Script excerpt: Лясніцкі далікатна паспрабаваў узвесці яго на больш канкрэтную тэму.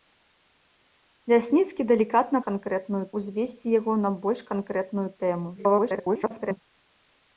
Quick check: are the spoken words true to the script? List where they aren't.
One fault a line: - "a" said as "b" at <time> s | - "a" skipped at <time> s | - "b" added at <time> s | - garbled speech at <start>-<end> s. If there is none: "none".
- "паспрабаваў" said as "канкрэтную" at 2.5 s
- garbled speech at 5.6-6.6 s